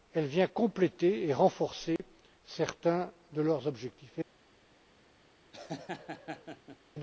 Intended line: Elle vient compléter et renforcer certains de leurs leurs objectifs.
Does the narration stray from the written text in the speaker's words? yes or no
yes